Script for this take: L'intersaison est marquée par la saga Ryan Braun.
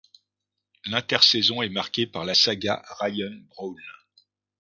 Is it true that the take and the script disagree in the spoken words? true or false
false